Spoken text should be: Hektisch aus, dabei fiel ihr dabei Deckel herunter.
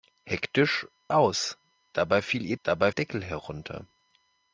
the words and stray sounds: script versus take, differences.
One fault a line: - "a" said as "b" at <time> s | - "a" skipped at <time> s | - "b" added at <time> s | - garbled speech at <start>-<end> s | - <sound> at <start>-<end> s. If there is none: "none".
none